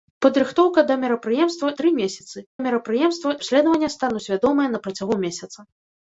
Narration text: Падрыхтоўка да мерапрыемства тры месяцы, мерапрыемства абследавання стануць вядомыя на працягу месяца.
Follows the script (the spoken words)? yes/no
yes